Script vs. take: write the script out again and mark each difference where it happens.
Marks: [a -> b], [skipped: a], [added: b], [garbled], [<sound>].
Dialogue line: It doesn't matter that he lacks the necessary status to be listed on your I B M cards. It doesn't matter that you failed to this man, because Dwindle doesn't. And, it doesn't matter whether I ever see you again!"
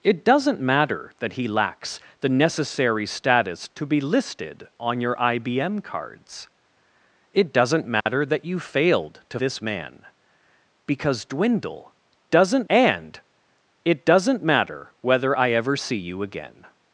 It doesn't matter that he lacks the necessary status to be listed on your I B M cards. It doesn't matter [dropout] that you failed to this man, because Dwindle doesn't. And, it doesn't matter whether I ever see you again!"